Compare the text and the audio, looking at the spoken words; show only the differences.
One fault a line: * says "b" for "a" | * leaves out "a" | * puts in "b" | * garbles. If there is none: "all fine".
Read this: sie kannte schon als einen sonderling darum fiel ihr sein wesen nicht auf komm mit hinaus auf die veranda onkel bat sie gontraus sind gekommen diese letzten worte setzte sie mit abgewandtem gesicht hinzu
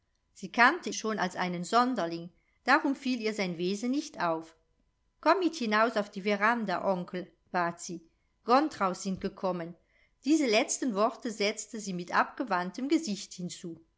all fine